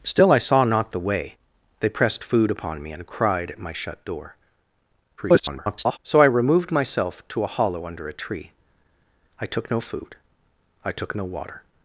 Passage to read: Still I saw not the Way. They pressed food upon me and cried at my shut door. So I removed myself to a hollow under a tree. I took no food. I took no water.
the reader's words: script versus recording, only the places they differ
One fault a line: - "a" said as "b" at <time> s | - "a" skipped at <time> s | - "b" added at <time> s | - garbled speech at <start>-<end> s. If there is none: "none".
- garbled speech at 5.2-6.0 s